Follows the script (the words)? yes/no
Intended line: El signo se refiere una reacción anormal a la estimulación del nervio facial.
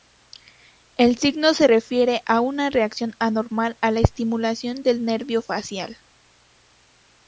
no